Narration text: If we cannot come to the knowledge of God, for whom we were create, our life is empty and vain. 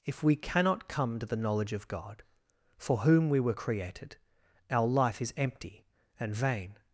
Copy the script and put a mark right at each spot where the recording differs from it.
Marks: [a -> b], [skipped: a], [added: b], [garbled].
If we cannot come to the knowledge of God, for whom we were [create, -> created] our life is empty and vain.